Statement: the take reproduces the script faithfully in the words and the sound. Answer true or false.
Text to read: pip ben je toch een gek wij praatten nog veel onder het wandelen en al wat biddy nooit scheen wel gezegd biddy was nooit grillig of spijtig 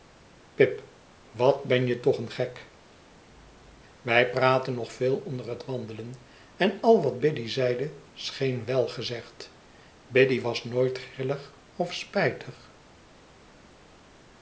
false